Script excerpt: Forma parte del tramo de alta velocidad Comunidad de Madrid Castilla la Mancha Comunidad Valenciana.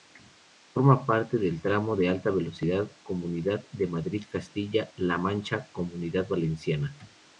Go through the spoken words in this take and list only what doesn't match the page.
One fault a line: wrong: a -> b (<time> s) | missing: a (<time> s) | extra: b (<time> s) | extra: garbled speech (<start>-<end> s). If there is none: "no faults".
no faults